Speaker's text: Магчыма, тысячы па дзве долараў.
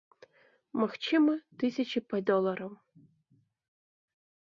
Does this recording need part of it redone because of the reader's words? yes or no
yes